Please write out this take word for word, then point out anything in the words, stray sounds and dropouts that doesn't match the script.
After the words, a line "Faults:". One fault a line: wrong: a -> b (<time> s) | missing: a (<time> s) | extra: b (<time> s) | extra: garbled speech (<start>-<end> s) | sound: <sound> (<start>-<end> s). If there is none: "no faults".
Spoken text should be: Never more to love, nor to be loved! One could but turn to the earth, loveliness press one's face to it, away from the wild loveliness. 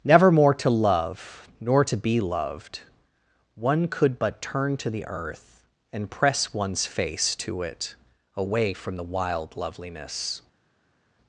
Never more to love, nor to be loved! One could but turn to the earth, and press one's face to it, away from the wild loveliness.
Faults:
wrong: loveliness -> and (5.9 s)